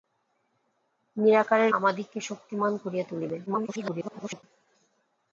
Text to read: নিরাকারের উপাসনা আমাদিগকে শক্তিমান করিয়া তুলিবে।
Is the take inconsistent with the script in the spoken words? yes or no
yes